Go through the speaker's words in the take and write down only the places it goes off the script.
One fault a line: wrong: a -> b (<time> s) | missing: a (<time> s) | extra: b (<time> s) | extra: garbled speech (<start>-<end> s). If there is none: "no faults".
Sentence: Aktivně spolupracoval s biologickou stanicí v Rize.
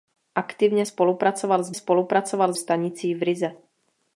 wrong: biologickou -> spolupracoval (1.7 s)